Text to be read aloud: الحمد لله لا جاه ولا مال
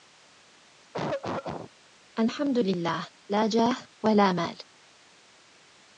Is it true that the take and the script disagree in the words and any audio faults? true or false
true